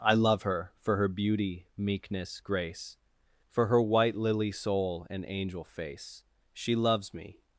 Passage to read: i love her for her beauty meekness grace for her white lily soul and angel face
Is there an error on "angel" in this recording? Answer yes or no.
no